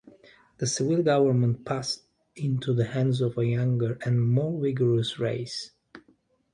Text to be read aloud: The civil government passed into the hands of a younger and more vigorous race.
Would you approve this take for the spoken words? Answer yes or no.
yes